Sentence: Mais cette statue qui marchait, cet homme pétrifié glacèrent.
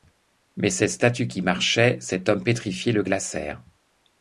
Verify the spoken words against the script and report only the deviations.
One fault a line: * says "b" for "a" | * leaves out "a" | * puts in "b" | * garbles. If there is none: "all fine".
* puts in "le"